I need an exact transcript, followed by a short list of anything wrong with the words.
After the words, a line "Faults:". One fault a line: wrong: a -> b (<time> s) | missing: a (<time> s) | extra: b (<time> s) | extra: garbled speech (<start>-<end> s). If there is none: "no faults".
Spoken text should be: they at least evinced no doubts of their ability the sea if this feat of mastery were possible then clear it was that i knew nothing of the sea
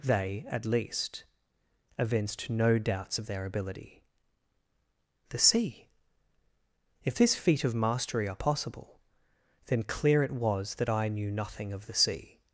they at least evinced no doubts of their ability the sea if this feat of mastery are possible then clear it was that i knew nothing of the sea
Faults:
wrong: were -> are (8.3 s)